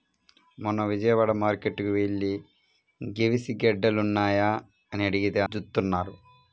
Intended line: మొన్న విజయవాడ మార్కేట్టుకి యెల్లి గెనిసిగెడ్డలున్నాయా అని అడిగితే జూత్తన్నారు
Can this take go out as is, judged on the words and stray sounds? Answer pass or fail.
pass